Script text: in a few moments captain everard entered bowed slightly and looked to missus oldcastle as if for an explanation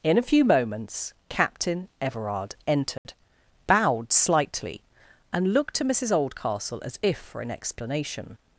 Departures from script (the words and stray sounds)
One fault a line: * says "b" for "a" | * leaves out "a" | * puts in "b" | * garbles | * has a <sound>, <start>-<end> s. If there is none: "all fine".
* has a dropout, 3.0-3.0 s